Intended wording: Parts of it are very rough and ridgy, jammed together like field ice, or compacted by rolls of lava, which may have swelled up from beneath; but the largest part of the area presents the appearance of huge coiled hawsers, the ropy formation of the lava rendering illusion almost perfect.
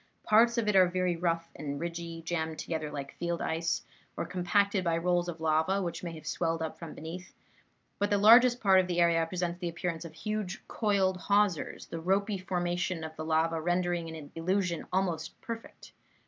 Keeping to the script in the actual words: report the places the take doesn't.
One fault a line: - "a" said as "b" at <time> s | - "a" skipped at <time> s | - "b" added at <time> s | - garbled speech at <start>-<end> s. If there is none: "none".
none